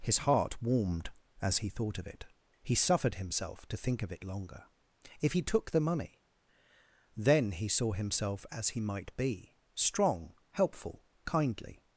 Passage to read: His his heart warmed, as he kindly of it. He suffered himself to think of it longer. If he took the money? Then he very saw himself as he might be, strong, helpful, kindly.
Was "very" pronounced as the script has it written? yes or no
no